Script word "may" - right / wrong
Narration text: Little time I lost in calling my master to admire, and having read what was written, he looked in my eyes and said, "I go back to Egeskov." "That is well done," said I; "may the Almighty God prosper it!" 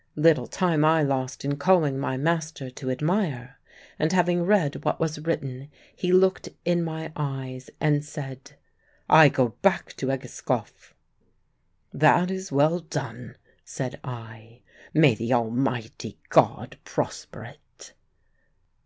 right